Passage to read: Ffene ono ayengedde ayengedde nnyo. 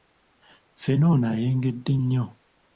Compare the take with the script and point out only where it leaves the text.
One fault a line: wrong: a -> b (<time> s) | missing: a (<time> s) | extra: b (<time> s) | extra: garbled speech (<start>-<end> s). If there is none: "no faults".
missing: ayengedde (1.9 s)